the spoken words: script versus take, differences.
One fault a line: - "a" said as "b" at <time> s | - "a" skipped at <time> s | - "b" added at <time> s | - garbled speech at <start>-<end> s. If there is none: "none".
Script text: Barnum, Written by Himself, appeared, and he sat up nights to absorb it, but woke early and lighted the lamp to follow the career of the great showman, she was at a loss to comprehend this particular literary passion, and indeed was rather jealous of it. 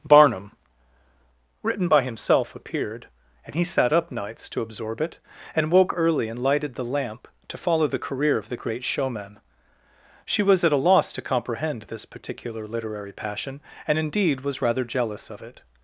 - "but" said as "and" at 5.5 s